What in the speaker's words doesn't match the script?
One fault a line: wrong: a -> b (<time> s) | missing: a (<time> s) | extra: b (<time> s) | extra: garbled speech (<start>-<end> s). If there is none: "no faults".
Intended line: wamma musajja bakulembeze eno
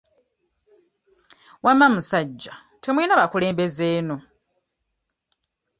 extra: temulina (2.8 s)